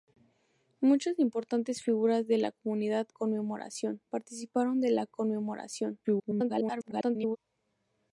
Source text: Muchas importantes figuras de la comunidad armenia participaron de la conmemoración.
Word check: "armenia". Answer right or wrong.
wrong